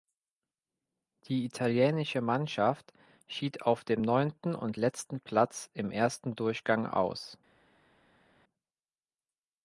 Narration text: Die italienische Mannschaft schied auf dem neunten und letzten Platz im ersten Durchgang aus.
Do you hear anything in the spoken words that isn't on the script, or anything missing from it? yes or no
no